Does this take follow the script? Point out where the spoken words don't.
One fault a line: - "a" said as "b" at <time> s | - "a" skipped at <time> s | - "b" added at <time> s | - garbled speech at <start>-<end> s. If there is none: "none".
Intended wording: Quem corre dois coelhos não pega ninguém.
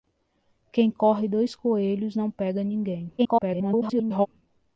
- garbled speech at 3.2-4.3 s